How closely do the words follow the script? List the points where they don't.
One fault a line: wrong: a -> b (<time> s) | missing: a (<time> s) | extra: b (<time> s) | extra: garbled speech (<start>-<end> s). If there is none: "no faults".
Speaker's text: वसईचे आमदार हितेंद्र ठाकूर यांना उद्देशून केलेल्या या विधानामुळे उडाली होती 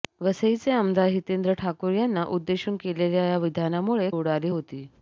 no faults